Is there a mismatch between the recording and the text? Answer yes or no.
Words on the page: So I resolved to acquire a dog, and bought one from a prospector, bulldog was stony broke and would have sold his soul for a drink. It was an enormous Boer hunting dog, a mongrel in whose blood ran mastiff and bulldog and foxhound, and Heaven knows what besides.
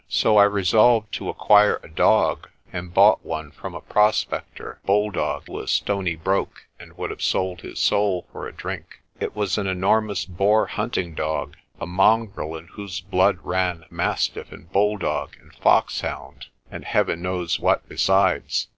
no